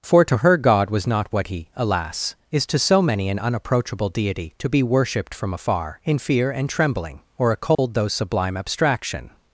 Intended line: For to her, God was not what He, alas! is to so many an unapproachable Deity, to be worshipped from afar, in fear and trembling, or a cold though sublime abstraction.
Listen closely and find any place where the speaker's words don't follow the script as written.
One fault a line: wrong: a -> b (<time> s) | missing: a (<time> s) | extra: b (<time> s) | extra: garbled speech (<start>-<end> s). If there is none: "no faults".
no faults